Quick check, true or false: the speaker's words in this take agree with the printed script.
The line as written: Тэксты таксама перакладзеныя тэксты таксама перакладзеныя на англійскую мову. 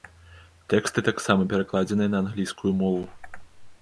false